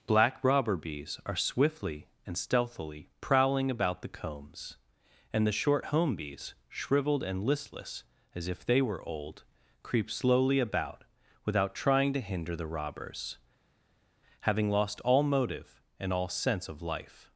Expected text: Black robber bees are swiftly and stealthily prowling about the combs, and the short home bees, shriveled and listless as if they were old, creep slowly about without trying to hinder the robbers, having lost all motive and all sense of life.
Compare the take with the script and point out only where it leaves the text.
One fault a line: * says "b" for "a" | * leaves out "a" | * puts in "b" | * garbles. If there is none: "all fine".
all fine